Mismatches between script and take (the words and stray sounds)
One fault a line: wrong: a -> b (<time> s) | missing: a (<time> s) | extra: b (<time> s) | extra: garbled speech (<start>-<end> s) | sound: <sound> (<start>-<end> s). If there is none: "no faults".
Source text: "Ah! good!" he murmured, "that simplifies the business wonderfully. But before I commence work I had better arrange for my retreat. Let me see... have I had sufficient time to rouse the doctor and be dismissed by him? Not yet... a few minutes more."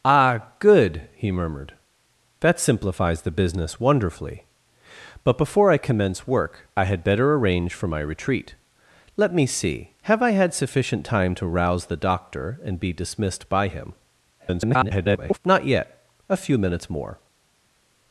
extra: garbled speech (14.4-15.4 s)